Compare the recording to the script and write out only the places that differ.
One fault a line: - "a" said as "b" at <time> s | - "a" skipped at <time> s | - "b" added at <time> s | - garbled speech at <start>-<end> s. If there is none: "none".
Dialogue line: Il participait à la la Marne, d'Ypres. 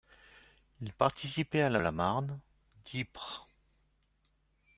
none